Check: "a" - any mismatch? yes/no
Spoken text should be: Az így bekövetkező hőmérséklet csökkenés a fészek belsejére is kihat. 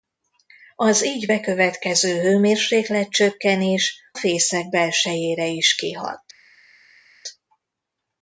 yes